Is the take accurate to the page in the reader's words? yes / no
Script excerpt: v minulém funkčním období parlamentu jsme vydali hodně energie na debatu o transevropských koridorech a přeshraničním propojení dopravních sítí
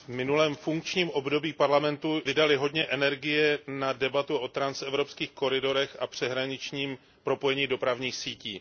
no